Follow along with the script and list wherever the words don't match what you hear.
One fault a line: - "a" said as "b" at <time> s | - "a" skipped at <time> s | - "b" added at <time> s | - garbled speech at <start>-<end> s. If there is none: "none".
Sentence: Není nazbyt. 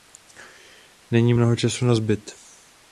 - "mnoho času" added at 1.3 s